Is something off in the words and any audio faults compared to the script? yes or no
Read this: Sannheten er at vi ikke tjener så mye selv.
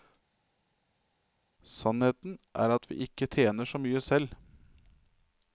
no